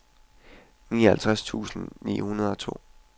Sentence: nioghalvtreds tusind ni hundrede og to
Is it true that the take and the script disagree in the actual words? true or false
false